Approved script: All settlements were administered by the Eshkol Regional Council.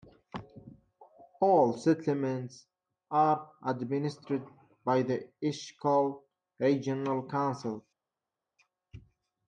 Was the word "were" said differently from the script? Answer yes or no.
yes